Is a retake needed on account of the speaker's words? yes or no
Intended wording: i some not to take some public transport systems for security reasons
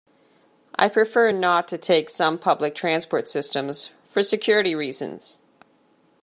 yes